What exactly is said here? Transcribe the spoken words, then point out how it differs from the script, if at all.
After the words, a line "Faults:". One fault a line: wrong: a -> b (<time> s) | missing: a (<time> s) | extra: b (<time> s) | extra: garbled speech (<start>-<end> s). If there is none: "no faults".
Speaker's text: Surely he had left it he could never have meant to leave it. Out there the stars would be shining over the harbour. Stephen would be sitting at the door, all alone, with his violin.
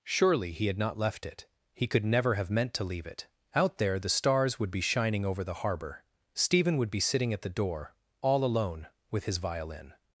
Surely he had not left it he could never have meant to leave it. Out there the stars would be shining over the harbour. Stephen would be sitting at the door, all alone, with his violin.
Faults:
extra: not (0.8 s)